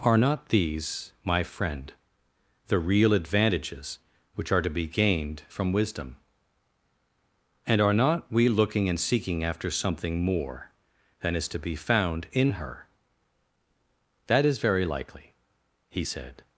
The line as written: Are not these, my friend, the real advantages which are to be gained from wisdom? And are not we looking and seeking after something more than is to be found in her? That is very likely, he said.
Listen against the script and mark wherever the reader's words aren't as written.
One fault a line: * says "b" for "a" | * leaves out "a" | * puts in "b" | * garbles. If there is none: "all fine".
all fine